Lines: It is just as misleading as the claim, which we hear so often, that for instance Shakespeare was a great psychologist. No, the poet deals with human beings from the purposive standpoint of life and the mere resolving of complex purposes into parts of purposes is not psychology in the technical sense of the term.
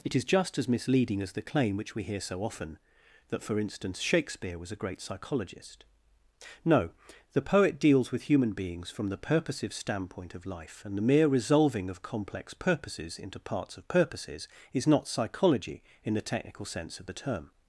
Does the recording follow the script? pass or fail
pass